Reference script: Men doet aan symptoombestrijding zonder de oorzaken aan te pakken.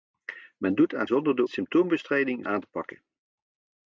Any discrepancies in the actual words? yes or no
yes